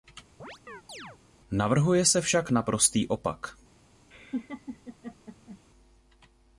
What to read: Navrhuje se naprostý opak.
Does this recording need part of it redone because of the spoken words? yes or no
yes